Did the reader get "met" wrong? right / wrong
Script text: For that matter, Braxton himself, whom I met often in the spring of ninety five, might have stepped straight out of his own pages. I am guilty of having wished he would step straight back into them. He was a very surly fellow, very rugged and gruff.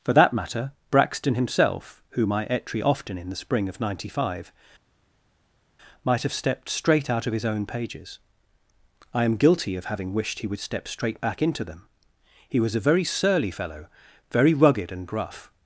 wrong